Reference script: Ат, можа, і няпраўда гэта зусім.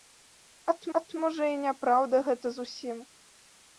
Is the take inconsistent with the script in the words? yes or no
yes